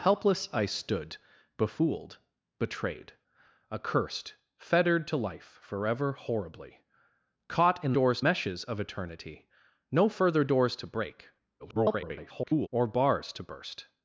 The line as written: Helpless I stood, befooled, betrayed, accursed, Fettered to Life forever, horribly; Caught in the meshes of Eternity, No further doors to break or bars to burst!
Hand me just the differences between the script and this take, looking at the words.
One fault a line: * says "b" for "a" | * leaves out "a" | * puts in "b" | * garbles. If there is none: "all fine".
* says "doors" for "the"
* garbles